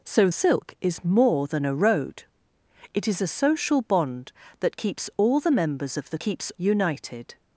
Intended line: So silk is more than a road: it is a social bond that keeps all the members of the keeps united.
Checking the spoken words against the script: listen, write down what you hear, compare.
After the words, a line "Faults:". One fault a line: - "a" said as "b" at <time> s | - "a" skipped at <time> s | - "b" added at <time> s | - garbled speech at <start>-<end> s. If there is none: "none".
So silk is more than a road: it is a social bond that keeps all the members of the keeps united.
Faults:
none